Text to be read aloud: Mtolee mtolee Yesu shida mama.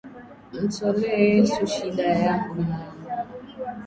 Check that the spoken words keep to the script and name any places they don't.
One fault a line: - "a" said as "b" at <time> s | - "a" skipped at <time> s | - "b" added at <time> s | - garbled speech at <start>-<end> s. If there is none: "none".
- "mtolee" skipped at 1.3 s
- "yako" added at 2.0 s